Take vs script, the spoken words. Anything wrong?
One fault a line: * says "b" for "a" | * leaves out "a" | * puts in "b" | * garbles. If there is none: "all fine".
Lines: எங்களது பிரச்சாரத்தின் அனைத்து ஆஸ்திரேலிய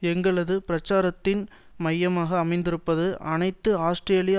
* puts in "மையமாக அமைந்திருப்பது"